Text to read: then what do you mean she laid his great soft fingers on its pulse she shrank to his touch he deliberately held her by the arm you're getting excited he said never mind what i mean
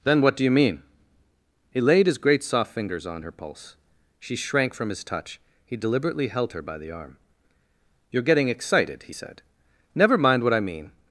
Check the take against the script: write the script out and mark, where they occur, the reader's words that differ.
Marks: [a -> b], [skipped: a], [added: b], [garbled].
then what do you mean [she -> he] laid his great soft fingers on [its -> her] pulse she shrank [to -> from] his touch he deliberately held her by the arm you're getting excited he said never mind what i mean